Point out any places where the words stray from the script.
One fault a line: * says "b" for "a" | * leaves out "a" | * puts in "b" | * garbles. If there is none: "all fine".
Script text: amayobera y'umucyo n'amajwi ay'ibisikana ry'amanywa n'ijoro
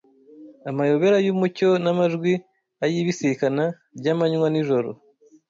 all fine